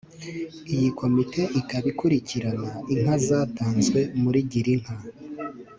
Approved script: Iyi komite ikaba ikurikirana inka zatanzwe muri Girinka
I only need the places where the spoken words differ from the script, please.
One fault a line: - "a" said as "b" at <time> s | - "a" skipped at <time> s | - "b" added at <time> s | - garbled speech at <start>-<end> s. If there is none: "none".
none